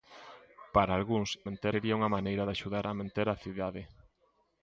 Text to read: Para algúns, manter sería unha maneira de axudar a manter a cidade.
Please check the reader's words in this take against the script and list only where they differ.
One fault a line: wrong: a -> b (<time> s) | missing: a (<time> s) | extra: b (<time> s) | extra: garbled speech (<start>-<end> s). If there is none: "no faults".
no faults